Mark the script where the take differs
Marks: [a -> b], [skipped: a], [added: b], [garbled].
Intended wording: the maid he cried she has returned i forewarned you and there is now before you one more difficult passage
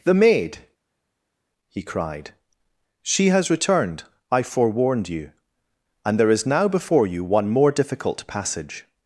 the maid he cried she has returned i forewarned you and there is now before you one more difficult passage